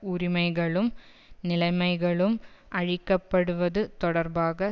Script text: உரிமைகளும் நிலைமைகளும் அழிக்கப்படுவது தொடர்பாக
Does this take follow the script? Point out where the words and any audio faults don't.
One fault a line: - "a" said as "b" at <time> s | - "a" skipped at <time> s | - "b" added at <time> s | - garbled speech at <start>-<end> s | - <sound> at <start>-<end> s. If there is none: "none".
none